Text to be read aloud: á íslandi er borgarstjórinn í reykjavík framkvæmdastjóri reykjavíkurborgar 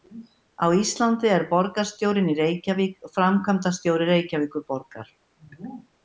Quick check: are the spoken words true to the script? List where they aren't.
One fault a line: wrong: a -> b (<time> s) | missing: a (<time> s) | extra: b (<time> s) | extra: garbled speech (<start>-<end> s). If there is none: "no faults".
no faults